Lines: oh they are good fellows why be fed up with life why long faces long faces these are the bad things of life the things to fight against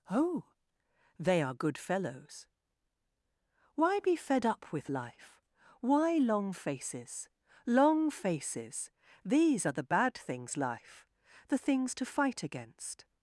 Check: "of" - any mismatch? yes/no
yes